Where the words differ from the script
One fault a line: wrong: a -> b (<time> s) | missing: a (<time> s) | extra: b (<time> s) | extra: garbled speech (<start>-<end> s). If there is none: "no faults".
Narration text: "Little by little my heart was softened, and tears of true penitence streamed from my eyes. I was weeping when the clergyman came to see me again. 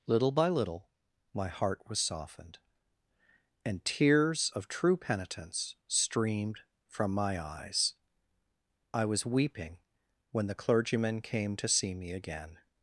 no faults